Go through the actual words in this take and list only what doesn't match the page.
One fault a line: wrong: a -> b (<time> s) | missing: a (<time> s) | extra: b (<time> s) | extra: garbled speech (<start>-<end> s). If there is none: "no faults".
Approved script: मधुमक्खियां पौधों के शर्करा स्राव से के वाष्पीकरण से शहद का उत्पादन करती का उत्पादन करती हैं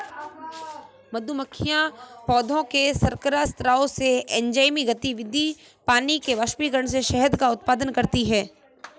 extra: एंजाइमी गतिविधि पानी (4.2 s)
missing: का उत्पादन करती (8.2 s)